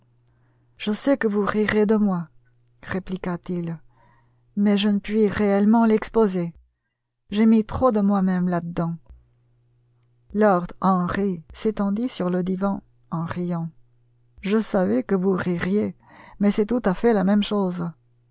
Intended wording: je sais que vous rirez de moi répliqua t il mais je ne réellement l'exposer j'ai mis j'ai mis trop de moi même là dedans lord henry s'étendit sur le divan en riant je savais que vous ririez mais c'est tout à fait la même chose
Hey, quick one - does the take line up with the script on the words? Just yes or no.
no